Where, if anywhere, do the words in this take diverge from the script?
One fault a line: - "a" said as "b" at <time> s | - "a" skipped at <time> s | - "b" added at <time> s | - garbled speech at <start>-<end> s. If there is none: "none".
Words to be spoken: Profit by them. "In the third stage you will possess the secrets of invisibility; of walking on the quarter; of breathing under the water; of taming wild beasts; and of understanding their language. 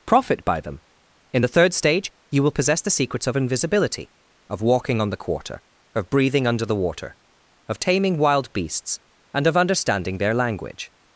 none